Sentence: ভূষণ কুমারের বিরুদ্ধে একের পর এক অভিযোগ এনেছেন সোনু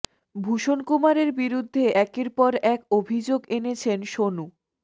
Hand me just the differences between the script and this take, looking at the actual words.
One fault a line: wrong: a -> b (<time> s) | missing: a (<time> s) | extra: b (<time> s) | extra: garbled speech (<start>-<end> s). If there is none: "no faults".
no faults